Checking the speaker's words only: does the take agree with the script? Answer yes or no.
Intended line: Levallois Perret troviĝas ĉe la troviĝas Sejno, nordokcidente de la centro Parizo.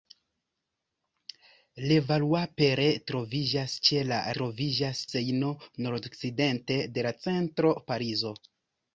yes